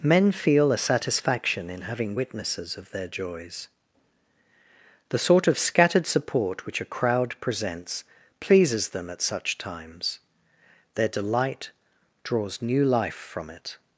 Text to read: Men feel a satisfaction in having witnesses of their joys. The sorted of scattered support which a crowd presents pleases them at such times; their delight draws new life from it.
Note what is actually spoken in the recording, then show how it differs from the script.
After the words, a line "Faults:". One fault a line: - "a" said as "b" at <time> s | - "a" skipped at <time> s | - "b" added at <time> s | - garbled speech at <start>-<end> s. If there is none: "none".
Men feel a satisfaction in having witnesses of their joys. The sort of scattered support which a crowd presents pleases them at such times; their delight draws new life from it.
Faults:
- "sorted" said as "sort" at 5.2 s